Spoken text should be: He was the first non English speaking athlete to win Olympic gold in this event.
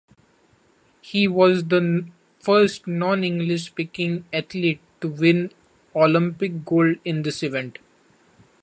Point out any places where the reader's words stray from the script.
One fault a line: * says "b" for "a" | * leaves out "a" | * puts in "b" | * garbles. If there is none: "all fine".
all fine